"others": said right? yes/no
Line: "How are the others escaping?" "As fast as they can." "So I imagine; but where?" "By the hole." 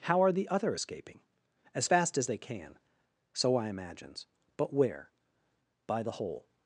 no